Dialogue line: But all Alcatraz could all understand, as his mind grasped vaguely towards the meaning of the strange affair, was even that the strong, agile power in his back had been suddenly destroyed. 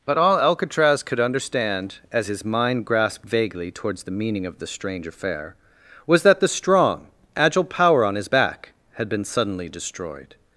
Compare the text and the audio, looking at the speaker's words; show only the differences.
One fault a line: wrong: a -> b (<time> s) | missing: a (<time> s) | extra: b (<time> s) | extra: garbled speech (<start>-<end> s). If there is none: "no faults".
missing: all (1.2 s)
missing: even (6.2 s)
wrong: in -> on (8.0 s)